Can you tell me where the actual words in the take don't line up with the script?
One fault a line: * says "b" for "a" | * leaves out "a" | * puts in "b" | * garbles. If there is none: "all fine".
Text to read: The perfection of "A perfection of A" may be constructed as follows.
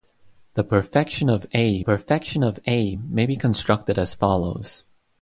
all fine